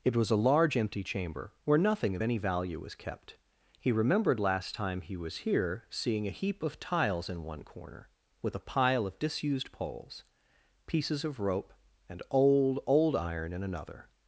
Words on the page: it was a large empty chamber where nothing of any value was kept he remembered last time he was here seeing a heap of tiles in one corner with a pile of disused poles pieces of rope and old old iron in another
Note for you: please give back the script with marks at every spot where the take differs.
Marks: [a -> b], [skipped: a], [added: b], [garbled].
it was a large empty chamber where nothing of any value was kept he remembered last time he was here seeing a heap of tiles in one corner with a pile of disused poles pieces of rope and old old iron in another